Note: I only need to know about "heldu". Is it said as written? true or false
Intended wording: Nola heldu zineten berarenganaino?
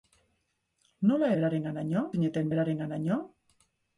false